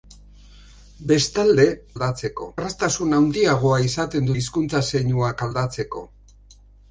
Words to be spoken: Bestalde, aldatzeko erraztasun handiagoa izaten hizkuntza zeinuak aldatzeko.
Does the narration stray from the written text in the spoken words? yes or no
no